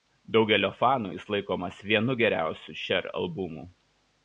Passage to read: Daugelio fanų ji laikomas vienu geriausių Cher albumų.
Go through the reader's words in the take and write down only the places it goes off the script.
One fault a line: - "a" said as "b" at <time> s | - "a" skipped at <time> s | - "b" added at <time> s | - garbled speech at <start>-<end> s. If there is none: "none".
- "ji" said as "jis" at 1.1 s